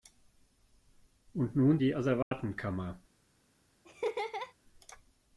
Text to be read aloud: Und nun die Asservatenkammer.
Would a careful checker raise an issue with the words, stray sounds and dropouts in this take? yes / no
yes